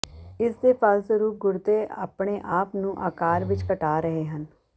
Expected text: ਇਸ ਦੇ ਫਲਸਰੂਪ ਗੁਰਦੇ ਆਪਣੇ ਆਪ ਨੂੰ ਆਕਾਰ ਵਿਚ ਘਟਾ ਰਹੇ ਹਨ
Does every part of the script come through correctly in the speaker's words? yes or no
yes